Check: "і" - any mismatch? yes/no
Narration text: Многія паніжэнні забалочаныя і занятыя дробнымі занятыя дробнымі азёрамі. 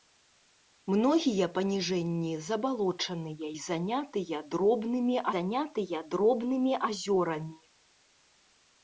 no